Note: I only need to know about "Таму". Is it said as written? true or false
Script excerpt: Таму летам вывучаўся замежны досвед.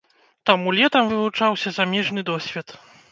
true